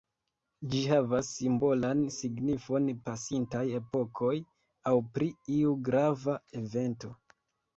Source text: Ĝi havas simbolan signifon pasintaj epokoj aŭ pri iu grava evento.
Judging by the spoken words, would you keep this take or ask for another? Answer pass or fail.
pass